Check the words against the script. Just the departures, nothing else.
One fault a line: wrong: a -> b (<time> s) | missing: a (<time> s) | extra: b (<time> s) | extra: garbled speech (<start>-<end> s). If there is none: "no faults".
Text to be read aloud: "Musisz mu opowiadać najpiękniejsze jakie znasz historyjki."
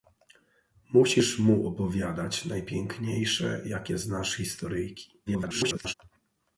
extra: garbled speech (5.3-5.9 s)